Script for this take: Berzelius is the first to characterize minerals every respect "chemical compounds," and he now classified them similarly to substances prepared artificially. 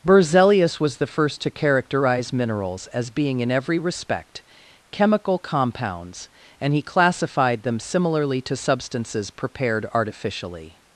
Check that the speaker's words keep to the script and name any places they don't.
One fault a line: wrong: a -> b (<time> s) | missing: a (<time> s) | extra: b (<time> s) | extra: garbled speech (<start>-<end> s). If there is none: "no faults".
wrong: is -> was (0.8 s)
extra: as being in (2.9 s)
missing: now (6.8 s)